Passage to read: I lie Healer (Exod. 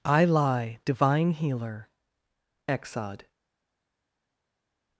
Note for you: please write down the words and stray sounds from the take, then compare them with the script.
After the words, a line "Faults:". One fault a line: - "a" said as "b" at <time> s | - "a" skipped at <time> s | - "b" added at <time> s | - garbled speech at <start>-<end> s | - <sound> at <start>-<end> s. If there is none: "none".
I lie divine Healer (Exod.
Faults:
- "divine" added at 0.9 s